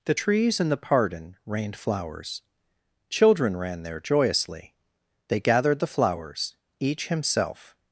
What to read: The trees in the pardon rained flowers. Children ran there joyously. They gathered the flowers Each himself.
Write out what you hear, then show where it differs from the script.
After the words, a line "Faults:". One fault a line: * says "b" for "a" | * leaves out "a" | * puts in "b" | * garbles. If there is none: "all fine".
The trees in the pardon rained flowers. Children ran there joyously. They gathered the flowers Each himself.
Faults:
all fine